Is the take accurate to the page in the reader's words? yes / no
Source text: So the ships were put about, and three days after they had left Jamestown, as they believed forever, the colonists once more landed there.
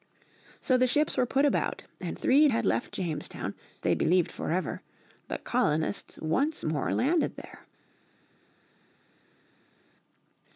no